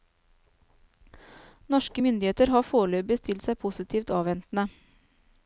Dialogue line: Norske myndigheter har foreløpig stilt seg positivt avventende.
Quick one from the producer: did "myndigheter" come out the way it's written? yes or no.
yes